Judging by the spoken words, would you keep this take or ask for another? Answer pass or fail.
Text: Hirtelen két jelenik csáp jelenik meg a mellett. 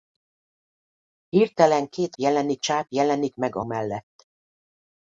pass